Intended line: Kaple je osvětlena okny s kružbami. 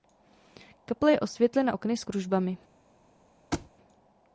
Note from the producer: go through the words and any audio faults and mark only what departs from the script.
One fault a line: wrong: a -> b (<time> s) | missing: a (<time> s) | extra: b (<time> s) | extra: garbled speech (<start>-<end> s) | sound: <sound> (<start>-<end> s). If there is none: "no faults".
sound: thud (3.5-3.7 s)